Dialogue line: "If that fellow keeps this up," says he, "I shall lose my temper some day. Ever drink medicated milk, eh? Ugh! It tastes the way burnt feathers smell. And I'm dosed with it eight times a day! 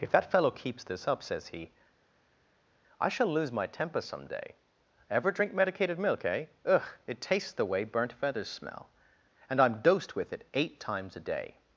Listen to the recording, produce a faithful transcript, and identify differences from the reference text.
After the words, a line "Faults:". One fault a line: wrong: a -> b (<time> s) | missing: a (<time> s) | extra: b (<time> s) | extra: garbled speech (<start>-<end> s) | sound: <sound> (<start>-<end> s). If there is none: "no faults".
"If that fellow keeps this up," says he, "I shall lose my temper some day. Ever drink medicated milk, eh? Ugh! It tastes the way burnt feathers smell. And I'm dosed with it eight times a day!
Faults:
no faults